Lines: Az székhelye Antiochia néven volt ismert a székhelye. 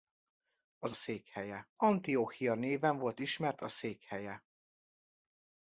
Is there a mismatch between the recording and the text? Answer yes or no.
no